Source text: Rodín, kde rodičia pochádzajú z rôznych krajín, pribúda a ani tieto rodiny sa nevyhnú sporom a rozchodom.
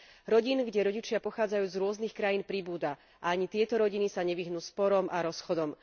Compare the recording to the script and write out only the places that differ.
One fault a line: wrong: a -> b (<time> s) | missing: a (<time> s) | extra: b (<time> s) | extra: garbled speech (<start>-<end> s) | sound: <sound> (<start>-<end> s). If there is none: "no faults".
no faults